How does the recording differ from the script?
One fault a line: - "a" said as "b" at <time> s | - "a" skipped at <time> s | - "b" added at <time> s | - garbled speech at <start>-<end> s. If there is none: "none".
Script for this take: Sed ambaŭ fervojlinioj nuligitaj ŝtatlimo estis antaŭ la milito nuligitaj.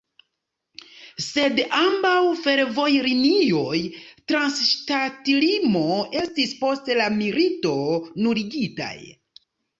- "nuligitaj" said as "trans" at 4.3 s
- "antaŭ" said as "post" at 6.6 s